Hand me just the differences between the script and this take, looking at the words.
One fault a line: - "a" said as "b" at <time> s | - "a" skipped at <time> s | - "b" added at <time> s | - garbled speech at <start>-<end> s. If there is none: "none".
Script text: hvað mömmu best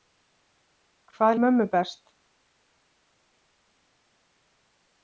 none